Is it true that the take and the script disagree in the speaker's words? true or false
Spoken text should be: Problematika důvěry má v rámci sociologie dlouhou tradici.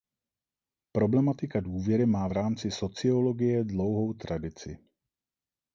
false